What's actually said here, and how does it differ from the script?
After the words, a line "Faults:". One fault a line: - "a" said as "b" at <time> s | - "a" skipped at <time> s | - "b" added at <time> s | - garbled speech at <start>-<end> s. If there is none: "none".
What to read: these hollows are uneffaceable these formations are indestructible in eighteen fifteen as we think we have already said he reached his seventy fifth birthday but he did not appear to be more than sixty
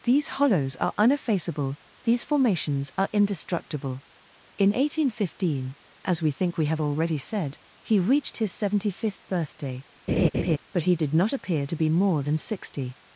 these hollows are uneffaceable these formations are indestructible in eighteen fifteen as we think we have already said he reached his seventy fifth birthday but he did not appear to be more than sixty
Faults:
none